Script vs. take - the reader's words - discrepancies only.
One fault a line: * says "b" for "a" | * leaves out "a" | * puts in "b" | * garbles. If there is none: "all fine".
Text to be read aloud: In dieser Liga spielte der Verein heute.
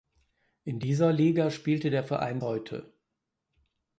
all fine